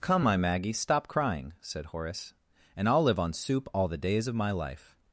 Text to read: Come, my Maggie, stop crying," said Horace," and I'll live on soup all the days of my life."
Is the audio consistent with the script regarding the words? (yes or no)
yes